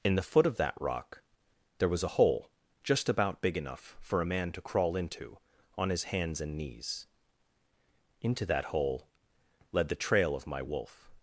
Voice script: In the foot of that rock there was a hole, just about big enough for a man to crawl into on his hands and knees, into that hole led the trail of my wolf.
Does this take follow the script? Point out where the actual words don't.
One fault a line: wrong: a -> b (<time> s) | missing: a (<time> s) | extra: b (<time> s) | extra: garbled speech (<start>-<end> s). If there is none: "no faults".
no faults